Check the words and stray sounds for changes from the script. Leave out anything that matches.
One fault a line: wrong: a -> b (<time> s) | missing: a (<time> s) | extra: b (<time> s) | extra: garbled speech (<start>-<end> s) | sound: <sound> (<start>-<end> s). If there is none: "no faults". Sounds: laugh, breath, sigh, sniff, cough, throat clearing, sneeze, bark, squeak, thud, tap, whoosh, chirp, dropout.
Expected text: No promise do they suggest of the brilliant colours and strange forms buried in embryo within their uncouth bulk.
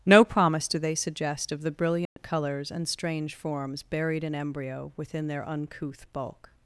sound: dropout (2.1-2.2 s)